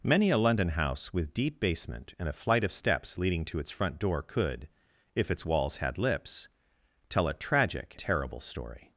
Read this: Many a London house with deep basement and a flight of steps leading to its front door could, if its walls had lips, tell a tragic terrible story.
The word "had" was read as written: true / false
true